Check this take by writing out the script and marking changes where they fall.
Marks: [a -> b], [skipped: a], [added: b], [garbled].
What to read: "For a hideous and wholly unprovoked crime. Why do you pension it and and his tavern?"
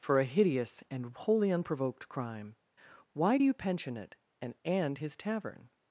"For a hideous and wholly unprovoked crime. Why do you pension it and and his tavern?"